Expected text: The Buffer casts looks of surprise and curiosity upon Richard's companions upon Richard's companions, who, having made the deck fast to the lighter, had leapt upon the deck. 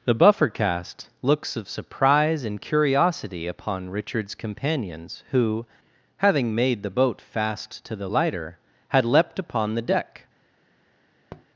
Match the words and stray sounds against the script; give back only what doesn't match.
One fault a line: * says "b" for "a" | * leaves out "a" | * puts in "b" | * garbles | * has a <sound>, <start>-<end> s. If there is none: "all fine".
* says "cast" for "casts"
* leaves out "upon Richard's companions"
* says "boat" for "deck"
* has a tap, 11.3-11.5 s